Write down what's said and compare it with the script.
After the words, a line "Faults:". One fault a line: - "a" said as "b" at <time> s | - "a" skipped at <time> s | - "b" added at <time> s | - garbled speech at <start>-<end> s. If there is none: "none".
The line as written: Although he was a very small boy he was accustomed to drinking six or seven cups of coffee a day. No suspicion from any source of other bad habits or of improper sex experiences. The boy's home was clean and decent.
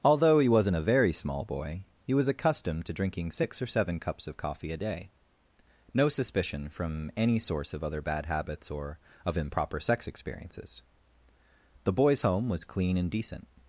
Although he wasn't a very small boy he was accustomed to drinking six or seven cups of coffee a day. No suspicion from any source of other bad habits or of improper sex experiences. The boy's home was clean and decent.
Faults:
- "was" said as "wasn't" at 0.5 s